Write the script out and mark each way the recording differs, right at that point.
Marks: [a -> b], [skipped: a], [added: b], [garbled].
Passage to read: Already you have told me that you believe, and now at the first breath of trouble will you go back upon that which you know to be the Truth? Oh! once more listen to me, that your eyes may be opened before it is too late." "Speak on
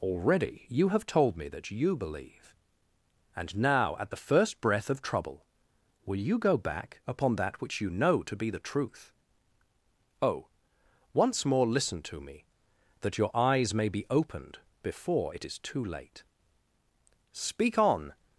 Already you have told me that you believe, and now at the first breath of trouble will you go back upon that which you know to be the Truth? Oh! once more listen to me, that your eyes may be opened before it is too late." "Speak on